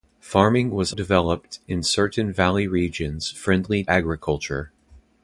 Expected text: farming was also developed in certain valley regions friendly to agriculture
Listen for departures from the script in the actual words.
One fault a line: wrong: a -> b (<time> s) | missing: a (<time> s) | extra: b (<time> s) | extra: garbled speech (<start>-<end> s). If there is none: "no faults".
missing: also (0.9 s)
missing: to (3.8 s)